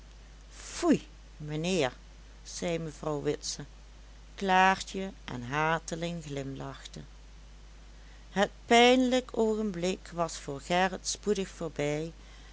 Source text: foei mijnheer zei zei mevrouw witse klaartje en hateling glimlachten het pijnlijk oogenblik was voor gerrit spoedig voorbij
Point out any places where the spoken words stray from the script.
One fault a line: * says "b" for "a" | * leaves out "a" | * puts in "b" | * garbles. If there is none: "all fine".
* leaves out "zei"